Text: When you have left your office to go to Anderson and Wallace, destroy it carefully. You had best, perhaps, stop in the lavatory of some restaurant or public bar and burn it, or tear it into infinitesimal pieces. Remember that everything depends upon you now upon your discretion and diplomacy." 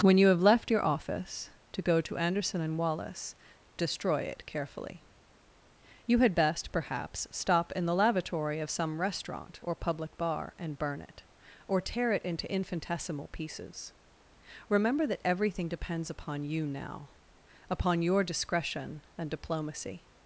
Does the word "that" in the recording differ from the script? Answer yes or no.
no